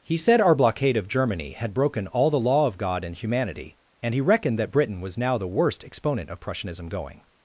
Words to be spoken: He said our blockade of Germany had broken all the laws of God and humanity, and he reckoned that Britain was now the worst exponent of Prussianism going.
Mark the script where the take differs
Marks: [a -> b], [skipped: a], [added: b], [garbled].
He said our blockade of Germany had broken all the [laws -> law] of God and humanity, and he reckoned that Britain was now the worst exponent of Prussianism going.